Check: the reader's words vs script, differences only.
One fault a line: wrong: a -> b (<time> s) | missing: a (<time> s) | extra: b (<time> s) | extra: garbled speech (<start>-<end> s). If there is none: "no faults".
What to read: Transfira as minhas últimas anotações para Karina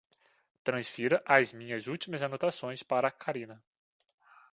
no faults